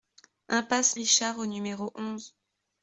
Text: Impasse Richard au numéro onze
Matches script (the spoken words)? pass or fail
pass